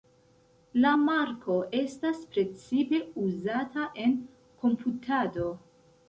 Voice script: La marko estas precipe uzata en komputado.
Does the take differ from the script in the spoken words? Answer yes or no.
no